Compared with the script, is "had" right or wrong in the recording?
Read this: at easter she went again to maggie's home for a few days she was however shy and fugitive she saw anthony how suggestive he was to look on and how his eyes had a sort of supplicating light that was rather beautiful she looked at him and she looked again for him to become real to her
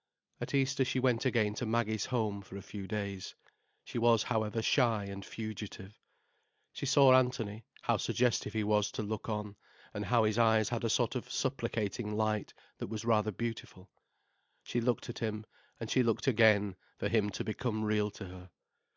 right